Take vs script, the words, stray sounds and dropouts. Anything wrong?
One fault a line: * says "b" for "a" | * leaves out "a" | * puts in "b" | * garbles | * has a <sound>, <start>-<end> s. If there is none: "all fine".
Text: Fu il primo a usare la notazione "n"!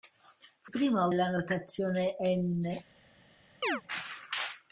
* leaves out "il"
* leaves out "usare"
* has a chirp, 3.6-3.8 s